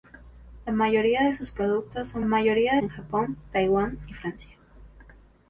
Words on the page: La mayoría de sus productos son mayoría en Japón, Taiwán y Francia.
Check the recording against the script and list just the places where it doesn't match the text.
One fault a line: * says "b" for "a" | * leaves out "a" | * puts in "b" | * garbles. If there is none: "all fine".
all fine